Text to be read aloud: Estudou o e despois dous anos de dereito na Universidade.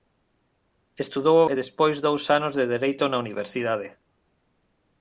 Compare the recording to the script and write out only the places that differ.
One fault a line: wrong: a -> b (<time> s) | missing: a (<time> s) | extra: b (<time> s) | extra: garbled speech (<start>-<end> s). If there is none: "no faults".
no faults